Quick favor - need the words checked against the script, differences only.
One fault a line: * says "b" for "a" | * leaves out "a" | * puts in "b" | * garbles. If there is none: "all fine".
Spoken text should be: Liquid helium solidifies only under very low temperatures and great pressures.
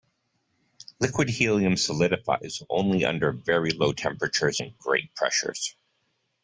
all fine